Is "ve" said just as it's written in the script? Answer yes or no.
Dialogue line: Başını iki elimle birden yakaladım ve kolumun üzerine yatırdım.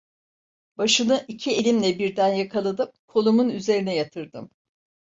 no